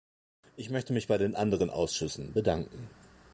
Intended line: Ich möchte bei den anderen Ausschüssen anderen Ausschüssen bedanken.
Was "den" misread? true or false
false